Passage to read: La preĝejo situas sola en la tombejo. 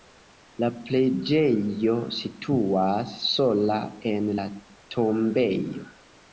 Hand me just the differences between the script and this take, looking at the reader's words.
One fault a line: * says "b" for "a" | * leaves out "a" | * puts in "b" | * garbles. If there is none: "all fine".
all fine